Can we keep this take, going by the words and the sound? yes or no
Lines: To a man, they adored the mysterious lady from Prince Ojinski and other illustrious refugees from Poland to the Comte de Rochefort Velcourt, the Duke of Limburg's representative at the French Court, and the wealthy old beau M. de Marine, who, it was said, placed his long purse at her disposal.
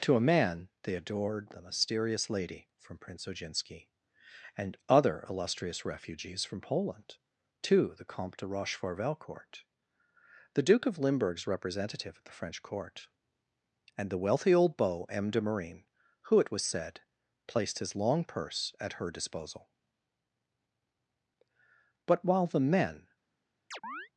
no